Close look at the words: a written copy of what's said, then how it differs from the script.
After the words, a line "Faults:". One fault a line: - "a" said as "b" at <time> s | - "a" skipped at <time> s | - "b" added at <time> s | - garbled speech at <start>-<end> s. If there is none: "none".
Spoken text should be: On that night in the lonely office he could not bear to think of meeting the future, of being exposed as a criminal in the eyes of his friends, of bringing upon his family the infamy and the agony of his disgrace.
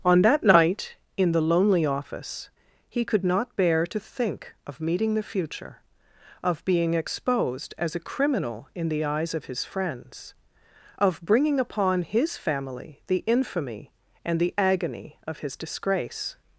On that night in the lonely office he could not bear to think of meeting the future, of being exposed as a criminal in the eyes of his friends, of bringing upon his family the infamy and the agony of his disgrace.
Faults:
none